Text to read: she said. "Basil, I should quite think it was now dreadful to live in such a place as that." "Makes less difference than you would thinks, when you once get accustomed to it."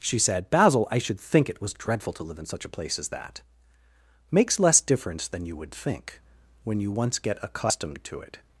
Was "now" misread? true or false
true